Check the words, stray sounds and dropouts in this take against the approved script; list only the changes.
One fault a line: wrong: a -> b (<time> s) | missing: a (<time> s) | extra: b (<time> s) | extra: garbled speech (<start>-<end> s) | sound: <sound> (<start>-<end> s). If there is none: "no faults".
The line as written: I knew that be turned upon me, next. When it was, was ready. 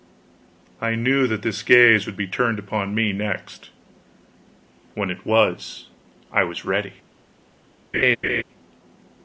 extra: this gaze would (1.4 s)
extra: I (6.3 s)
sound: laugh (7.9-8.4 s)